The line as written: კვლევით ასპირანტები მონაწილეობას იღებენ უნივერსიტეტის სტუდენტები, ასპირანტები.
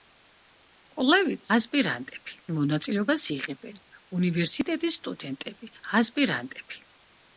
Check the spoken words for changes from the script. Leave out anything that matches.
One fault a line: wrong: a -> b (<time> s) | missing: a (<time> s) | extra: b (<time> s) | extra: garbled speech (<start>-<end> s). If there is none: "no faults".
no faults